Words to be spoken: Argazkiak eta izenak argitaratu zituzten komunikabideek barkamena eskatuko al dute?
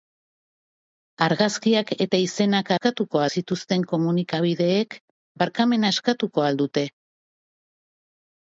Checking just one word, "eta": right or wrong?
right